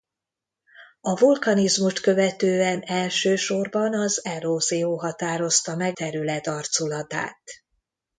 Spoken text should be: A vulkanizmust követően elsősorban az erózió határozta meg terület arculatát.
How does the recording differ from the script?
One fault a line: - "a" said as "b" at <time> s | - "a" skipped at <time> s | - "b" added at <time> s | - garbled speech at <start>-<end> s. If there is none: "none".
none